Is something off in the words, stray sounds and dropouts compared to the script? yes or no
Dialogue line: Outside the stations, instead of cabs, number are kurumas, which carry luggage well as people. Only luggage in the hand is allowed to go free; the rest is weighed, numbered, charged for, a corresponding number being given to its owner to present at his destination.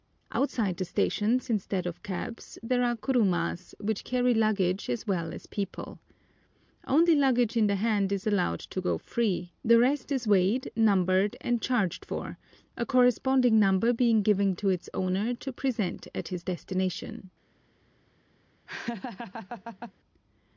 yes